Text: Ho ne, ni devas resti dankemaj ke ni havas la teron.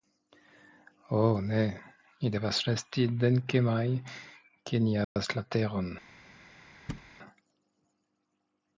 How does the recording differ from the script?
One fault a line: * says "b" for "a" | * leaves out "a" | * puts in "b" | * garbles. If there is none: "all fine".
all fine